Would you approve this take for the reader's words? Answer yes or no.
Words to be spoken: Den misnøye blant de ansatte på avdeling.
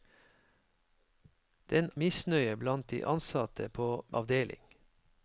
yes